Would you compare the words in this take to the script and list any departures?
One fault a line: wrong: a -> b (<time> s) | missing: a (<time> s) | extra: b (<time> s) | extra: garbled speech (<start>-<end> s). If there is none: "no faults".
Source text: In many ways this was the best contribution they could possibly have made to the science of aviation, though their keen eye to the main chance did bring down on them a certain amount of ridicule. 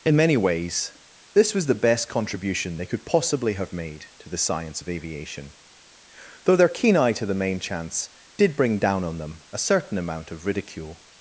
no faults